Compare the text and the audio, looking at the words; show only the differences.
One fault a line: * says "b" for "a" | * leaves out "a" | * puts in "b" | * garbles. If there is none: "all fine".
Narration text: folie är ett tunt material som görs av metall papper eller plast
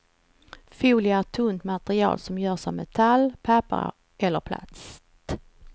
all fine